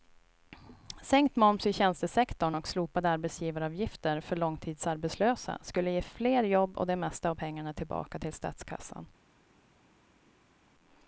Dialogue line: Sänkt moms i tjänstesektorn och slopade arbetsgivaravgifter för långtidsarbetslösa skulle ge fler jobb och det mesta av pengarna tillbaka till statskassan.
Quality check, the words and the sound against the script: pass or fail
pass